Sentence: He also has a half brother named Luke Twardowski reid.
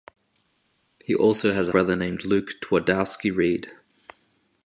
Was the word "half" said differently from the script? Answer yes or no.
yes